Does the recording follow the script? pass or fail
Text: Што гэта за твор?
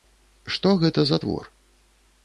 pass